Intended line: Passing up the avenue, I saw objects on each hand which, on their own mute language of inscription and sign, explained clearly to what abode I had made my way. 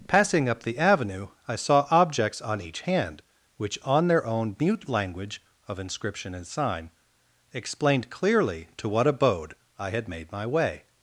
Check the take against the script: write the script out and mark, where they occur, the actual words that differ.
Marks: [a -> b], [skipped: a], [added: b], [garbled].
Passing up the avenue, I saw objects on each hand which, on their own mute language of inscription and sign, explained clearly to what abode I had made my way.